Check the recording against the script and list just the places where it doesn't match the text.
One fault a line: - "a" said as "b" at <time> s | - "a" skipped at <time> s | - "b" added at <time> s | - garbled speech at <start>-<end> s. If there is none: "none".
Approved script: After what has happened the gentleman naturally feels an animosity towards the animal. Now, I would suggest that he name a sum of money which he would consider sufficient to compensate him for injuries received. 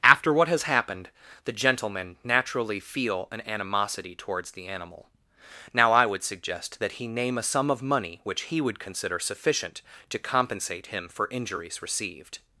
- "feels" said as "feel" at 2.8 s